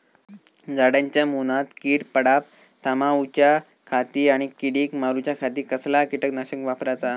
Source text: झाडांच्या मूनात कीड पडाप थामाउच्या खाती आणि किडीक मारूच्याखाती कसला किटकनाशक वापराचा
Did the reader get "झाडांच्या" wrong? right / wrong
right